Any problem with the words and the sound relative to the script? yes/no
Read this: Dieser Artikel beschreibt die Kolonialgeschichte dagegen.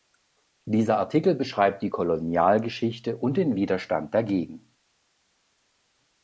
yes